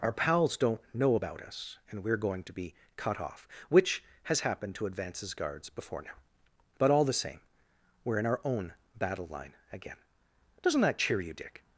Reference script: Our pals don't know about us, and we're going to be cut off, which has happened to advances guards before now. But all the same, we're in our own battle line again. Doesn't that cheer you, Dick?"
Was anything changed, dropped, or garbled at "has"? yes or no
no